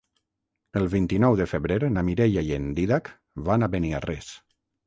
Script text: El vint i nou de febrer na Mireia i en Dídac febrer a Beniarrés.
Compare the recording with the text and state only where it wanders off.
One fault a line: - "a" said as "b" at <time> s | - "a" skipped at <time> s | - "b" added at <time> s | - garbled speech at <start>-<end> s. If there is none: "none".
- "febrer" said as "van" at 3.5 s